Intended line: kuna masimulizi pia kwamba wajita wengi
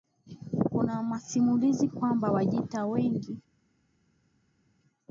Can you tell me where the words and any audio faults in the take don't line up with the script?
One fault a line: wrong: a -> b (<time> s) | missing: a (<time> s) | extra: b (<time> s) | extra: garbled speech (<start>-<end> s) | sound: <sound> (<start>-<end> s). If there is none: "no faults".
missing: pia (1.9 s)